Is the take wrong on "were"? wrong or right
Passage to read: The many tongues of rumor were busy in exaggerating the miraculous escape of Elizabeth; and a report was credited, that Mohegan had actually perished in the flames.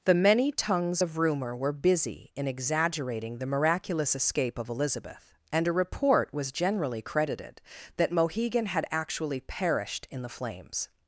right